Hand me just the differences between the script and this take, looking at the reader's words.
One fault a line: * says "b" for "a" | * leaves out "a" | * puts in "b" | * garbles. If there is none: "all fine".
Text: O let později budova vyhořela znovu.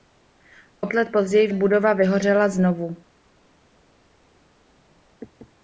all fine